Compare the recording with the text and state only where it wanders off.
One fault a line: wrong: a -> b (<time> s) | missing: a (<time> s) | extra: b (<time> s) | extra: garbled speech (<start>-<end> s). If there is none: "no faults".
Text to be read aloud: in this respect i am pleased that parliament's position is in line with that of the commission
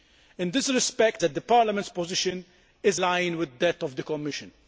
missing: i am pleased (1.2 s)
missing: in (3.0 s)